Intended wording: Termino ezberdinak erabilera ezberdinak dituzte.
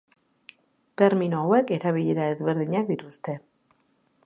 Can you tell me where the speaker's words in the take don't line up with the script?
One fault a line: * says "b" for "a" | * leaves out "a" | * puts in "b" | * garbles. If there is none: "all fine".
* says "hauek" for "ezberdinak"